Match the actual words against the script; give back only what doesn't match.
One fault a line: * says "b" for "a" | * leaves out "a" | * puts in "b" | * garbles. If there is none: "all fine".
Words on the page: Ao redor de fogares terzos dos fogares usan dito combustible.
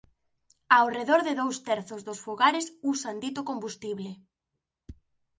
* says "dous" for "fogares"